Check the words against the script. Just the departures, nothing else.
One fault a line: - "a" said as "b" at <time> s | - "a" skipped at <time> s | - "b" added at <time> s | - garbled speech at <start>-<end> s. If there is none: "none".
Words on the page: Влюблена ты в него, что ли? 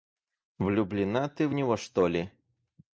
none